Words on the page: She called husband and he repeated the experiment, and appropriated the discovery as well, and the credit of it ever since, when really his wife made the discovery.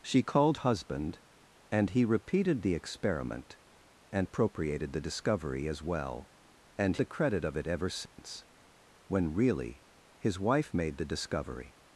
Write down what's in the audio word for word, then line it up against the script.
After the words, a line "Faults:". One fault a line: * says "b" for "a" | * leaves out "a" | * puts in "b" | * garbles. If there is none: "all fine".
She called husband and he repeated the experiment, and appropriated the discovery as well, and the credit of it ever since, when really his wife made the discovery.
Faults:
all fine